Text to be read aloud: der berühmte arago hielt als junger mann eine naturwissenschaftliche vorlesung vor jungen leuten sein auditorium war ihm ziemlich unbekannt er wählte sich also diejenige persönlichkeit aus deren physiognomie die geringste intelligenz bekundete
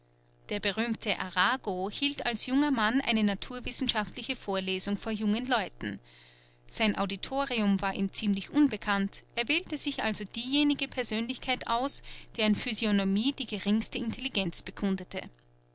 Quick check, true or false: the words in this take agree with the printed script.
true